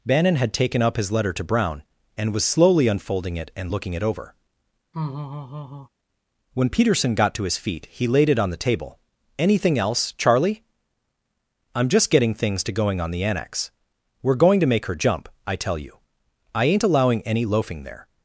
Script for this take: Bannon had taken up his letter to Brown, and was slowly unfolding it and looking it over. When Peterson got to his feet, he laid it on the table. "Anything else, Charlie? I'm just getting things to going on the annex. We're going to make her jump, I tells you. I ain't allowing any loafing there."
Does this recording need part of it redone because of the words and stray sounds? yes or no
yes